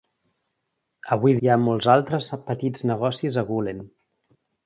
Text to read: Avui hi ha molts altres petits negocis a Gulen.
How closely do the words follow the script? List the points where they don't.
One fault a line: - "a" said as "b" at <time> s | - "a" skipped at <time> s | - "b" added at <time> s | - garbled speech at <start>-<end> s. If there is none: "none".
none